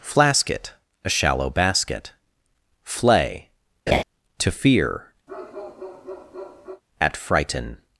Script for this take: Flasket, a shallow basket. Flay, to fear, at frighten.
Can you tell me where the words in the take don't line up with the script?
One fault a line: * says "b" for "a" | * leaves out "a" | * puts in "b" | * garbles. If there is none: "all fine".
all fine